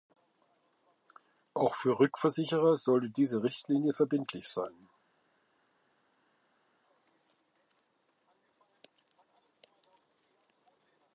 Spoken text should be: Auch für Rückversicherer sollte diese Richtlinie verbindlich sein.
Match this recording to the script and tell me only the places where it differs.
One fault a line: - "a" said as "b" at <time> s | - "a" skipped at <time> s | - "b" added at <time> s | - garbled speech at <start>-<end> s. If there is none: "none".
none